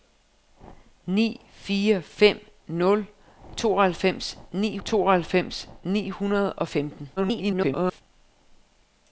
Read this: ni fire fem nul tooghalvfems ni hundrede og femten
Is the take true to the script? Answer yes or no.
no